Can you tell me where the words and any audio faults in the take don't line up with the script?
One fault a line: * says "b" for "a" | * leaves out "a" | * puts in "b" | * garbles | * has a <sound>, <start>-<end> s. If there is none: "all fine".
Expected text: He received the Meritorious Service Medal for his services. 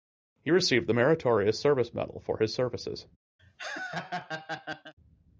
* has a laugh, 3.4-4.9 s